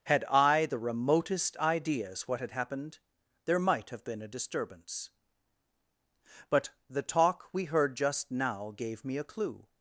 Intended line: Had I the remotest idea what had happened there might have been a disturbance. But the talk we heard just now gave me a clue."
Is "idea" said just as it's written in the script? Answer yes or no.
no